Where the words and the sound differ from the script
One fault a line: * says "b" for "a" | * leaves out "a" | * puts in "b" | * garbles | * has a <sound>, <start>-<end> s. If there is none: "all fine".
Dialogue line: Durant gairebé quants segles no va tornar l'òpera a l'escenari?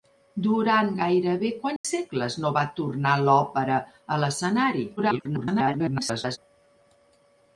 * has a dropout, 1.8-1.8 s
* garbles